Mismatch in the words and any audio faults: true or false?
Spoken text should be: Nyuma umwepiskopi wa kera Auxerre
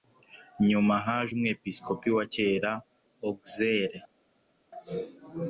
true